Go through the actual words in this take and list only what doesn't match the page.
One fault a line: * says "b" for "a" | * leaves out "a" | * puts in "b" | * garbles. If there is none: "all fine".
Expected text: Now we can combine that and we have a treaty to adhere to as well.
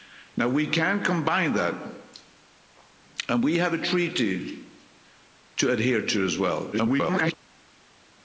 * garbles